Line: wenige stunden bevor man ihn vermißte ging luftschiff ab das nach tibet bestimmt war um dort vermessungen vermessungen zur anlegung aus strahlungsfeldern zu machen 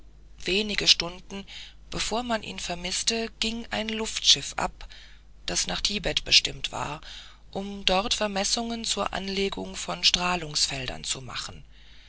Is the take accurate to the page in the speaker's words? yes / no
no